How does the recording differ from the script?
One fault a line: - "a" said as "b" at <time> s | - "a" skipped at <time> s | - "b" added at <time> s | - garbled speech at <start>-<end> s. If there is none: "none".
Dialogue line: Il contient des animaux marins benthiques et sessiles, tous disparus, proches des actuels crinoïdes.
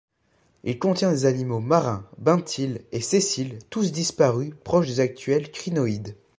none